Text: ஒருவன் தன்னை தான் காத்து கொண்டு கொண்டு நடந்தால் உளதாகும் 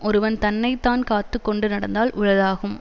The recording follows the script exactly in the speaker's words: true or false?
false